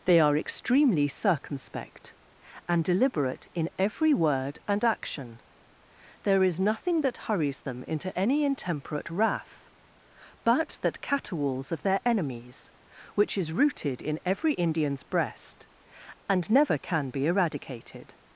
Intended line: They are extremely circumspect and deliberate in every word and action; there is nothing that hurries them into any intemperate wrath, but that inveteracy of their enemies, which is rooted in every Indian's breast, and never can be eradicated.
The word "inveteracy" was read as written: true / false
false